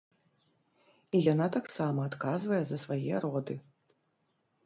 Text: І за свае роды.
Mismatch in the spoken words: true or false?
true